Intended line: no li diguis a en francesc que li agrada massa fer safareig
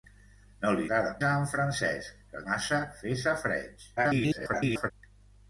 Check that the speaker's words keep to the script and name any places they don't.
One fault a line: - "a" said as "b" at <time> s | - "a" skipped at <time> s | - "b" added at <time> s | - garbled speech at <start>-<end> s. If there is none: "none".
- "diguis" said as "agrada" at 0.9 s
- "li agrada" skipped at 2.4 s
- garbled speech at 4.0-4.9 s